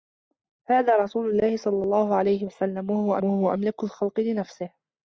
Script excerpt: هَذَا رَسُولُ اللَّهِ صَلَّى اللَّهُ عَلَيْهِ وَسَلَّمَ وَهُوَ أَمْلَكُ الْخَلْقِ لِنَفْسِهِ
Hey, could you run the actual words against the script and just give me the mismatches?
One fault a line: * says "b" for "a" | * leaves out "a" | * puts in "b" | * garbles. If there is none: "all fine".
* puts in "وَهُوَ"